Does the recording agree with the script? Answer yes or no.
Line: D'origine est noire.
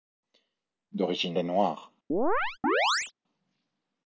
yes